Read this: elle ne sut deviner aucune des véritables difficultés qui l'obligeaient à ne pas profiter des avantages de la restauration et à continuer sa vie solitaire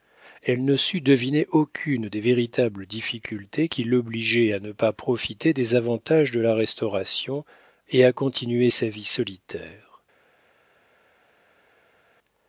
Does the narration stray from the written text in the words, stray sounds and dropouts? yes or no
no